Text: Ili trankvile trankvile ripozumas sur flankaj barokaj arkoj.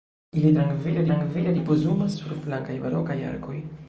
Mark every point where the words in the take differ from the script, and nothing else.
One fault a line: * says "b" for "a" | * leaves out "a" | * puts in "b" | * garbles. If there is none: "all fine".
all fine